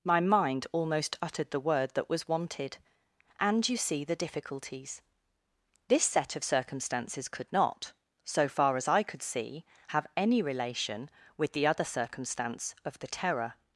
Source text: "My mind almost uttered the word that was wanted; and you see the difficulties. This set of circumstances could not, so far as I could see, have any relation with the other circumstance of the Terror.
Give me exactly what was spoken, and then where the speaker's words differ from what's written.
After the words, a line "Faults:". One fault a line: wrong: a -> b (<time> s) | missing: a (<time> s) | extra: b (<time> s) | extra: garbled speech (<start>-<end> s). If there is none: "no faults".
"My mind almost uttered the word that was wanted; and you see the difficulties. This set of circumstances could not, so far as I could see, have any relation with the other circumstance of the Terror.
Faults:
no faults